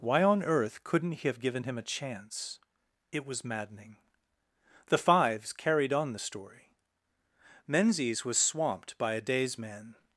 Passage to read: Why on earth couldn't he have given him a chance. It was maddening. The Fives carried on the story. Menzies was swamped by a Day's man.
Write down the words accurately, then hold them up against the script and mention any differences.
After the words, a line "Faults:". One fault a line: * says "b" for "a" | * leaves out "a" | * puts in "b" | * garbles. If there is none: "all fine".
Why on earth couldn't he have given him a chance. It was maddening. The Fives carried on the story. Menzies was swamped by a Day's man.
Faults:
all fine